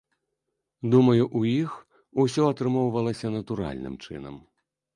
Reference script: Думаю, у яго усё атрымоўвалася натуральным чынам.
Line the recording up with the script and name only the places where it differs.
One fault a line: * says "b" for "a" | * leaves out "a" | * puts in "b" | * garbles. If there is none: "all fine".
* says "іх" for "яго"